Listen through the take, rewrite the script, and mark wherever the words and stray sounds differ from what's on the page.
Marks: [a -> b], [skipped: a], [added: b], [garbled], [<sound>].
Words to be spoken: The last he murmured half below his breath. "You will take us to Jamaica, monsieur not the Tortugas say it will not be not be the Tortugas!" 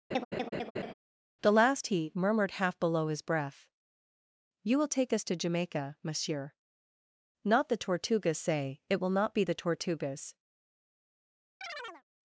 [laugh] The last he murmured half below his breath. "You will take us to Jamaica, monsieur not the Tortugas say it will not be [skipped: not be] the Tortugas!" [chirp]